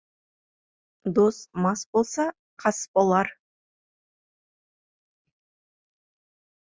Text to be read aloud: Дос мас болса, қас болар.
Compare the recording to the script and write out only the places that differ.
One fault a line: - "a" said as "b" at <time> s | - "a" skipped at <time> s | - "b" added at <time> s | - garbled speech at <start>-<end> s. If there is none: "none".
none